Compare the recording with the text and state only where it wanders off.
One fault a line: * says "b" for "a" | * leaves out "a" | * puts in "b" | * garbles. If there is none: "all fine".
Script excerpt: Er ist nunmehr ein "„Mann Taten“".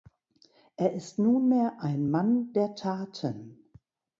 * puts in "der"